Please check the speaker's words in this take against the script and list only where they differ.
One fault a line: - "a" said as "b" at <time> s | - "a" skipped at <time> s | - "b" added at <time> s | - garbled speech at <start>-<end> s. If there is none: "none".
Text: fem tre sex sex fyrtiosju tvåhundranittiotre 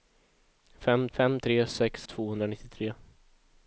- "fem" added at 1.2 s
- "sex fyrtiosju" skipped at 2.0 s